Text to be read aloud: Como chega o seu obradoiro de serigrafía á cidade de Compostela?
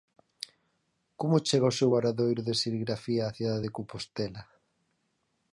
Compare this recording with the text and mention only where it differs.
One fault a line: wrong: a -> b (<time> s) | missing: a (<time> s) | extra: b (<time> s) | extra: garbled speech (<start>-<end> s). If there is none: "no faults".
no faults